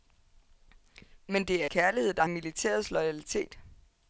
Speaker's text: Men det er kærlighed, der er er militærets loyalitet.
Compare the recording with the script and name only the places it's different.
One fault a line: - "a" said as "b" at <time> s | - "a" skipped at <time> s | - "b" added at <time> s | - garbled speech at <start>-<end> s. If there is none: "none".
none